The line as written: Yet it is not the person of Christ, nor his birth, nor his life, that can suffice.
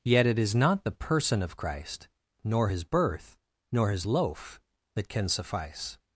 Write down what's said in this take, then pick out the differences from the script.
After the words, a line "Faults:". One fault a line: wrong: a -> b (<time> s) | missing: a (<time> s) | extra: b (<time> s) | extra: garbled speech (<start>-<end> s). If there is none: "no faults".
Yet it is not the person of Christ, nor his birth, nor his loaf, that can suffice.
Faults:
wrong: life -> loaf (4.0 s)